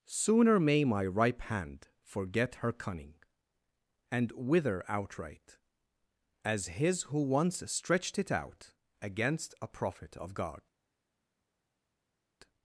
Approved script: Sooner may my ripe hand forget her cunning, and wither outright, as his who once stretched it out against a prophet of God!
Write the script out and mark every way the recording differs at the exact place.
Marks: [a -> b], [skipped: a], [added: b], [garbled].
Sooner may my ripe hand forget her cunning, and wither outright, as his who once stretched it out against a prophet of God!